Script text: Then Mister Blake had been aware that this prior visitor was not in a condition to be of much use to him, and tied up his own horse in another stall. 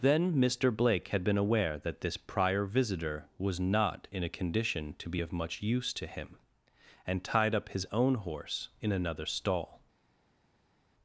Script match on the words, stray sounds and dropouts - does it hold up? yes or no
yes